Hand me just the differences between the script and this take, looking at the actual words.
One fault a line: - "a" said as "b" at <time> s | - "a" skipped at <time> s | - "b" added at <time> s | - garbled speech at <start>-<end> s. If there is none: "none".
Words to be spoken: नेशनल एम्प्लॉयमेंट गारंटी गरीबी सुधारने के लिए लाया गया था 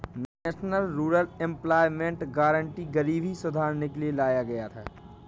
- "रूरल" added at 0.9 s